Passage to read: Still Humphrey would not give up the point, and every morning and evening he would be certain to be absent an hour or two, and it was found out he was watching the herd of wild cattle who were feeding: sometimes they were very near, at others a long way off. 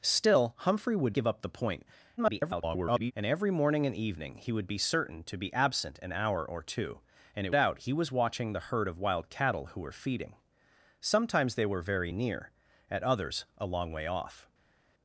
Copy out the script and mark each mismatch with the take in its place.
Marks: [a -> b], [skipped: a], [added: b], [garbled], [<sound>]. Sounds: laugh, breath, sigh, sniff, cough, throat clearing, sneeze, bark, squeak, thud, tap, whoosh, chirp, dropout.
Still Humphrey would [skipped: not] give up the point, [garbled] and every morning and evening he would be certain to be absent an hour or two, and it [skipped: was found] out he was watching the herd of wild cattle who were feeding: sometimes they were very near, at others a long way off.